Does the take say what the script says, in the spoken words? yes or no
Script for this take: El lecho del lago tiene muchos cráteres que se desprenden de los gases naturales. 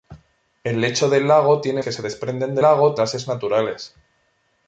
no